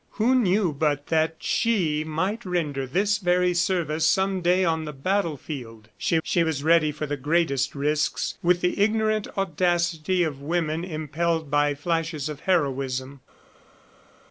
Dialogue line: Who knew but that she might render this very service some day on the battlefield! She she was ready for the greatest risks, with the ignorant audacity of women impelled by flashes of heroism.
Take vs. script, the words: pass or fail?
pass